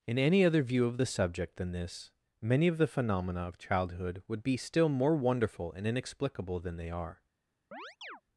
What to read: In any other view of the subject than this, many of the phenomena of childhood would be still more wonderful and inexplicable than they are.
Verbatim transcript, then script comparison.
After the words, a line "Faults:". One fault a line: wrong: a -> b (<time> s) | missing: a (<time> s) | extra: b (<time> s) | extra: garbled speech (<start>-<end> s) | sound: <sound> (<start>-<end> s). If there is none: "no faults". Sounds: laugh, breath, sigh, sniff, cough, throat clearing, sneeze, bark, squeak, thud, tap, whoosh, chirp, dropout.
In any other view of the subject than this, many of the phenomena of childhood would be still more wonderful and inexplicable than they are.
Faults:
sound: chirp (7.7-8.2 s)